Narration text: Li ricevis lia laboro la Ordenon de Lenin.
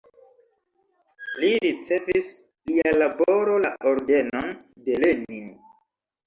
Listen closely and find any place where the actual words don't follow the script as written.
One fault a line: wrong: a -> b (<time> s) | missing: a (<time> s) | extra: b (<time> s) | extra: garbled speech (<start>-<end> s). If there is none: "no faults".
no faults